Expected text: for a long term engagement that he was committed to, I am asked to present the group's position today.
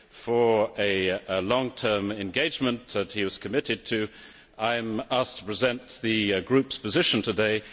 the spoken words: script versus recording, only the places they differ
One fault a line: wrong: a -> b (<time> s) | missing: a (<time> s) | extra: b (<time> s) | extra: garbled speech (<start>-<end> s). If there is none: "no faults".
no faults